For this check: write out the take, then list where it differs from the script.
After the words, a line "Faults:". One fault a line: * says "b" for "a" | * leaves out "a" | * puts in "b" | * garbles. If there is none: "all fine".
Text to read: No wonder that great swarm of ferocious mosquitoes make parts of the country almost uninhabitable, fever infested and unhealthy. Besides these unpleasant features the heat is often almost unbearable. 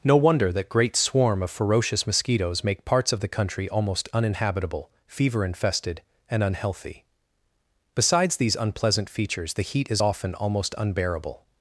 No wonder that great swarm of ferocious mosquitoes make parts of the country almost uninhabitable, fever infested and unhealthy. Besides these unpleasant features the heat is often almost unbearable.
Faults:
all fine